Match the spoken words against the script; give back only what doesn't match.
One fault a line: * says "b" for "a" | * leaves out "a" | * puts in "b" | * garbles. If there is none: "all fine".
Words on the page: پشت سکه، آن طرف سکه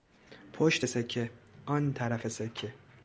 all fine